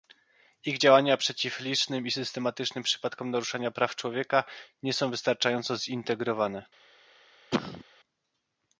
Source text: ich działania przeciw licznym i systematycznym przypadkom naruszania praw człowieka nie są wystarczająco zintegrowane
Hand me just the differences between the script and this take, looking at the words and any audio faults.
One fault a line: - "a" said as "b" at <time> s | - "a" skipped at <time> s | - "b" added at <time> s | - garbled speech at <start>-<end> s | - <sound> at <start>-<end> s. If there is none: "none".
- cough at 7.5-7.8 s